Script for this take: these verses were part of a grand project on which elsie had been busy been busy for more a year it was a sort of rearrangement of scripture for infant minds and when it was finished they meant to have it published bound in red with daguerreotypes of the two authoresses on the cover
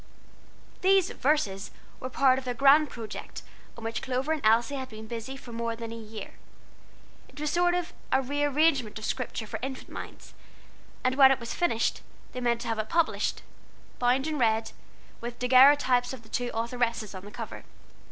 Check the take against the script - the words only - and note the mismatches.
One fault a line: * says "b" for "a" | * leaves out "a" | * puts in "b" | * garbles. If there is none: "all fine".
* puts in "clover and"
* leaves out "been busy"
* puts in "than"